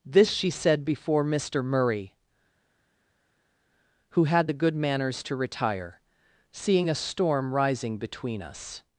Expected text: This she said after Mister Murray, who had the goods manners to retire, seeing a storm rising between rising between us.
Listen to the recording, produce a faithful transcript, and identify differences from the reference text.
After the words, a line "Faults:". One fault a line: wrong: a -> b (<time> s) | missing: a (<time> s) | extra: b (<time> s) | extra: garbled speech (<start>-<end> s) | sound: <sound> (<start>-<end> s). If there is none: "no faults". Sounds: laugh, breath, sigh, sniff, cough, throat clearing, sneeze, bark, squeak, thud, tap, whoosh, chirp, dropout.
This she said before Mister Murray, who had the good manners to retire, seeing a storm rising between us.
Faults:
wrong: after -> before (0.8 s)
wrong: goods -> good (4.5 s)
missing: rising between (8.4 s)